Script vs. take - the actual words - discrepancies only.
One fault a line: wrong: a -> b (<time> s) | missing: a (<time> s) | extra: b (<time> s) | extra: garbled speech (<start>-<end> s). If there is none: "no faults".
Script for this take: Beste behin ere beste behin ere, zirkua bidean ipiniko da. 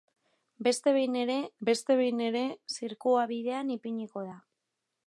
no faults